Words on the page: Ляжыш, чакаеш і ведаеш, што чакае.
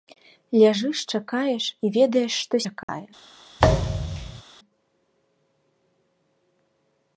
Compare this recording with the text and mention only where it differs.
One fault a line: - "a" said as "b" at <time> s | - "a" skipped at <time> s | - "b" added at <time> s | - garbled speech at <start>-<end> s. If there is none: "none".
none